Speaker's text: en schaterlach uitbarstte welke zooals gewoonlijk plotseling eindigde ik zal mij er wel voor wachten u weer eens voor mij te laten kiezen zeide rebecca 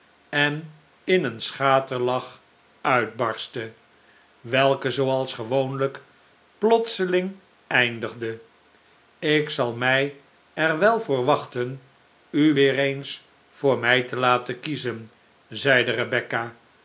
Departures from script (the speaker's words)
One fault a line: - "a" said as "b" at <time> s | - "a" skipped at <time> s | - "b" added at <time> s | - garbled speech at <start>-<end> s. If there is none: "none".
- "in een" added at 1.0 s